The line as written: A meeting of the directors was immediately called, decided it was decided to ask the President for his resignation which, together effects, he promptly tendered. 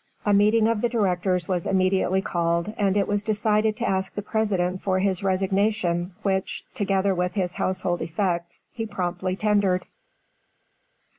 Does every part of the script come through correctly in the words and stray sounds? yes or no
no